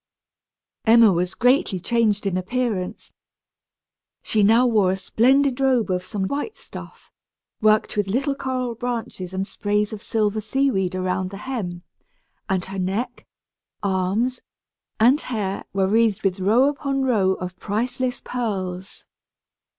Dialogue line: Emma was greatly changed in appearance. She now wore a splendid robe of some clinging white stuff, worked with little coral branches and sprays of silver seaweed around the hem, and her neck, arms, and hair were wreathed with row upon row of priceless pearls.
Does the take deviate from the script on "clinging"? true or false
true